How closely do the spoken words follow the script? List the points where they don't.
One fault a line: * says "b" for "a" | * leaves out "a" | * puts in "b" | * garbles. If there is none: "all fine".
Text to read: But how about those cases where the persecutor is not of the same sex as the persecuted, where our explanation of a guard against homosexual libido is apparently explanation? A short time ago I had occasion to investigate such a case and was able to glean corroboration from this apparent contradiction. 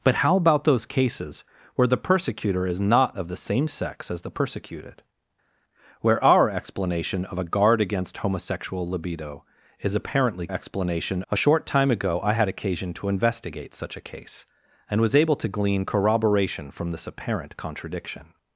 all fine